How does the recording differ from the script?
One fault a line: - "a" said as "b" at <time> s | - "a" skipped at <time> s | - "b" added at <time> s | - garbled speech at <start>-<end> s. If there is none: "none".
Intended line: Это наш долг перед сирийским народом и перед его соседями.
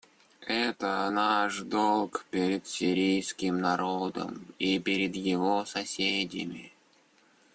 none